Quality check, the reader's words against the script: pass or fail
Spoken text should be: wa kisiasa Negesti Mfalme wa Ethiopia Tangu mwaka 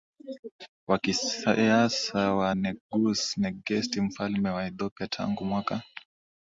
fail